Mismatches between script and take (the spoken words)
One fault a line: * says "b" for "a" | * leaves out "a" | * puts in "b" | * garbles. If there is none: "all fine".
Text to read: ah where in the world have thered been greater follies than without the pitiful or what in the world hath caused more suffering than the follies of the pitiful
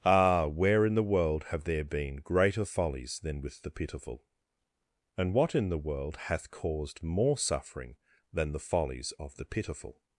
* says "there" for "thered"
* says "with" for "without"
* says "and" for "or"